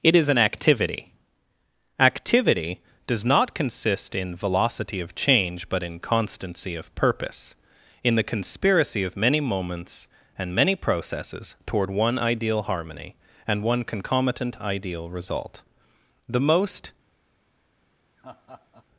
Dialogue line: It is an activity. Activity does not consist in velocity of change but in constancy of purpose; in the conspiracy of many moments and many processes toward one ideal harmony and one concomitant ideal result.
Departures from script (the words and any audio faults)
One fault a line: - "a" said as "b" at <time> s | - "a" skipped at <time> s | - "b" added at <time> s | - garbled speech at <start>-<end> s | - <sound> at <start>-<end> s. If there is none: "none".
- "The most" added at 16.3 s
- laugh at 18.2-18.9 s